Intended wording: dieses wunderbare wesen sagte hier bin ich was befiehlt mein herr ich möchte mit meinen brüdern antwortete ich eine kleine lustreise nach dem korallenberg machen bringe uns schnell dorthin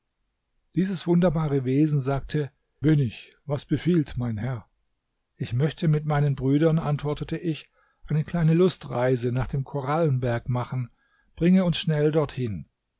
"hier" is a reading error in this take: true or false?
true